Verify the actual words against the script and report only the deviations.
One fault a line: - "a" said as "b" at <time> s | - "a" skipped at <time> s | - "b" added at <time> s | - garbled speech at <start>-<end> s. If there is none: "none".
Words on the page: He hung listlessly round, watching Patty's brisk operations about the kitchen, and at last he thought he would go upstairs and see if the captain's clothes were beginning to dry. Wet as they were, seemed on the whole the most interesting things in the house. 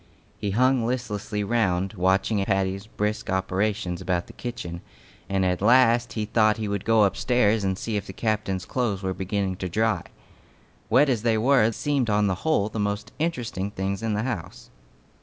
none